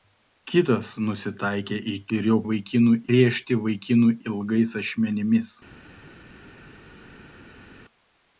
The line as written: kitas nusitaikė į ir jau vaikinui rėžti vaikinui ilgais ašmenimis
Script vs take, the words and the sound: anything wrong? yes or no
no